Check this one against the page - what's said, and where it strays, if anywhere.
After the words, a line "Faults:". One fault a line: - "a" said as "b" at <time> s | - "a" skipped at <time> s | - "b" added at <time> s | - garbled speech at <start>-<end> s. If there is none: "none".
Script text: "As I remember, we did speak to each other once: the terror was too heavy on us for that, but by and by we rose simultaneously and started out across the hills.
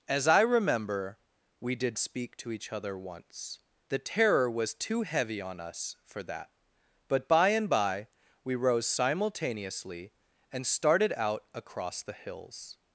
"As I remember, we did speak to each other once: the terror was too heavy on us for that, but by and by we rose simultaneously and started out across the hills.
Faults:
none